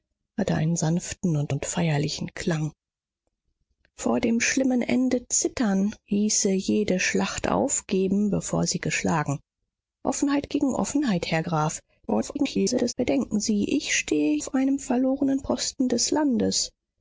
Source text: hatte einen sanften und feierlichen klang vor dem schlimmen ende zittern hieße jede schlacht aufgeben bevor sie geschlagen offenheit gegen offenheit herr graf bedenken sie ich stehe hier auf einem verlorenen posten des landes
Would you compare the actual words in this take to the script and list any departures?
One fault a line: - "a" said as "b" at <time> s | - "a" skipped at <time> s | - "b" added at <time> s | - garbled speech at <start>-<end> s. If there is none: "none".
- "und" added at 1.5 s
- garbled speech at 12.1-12.9 s
- "hier" skipped at 14.4 s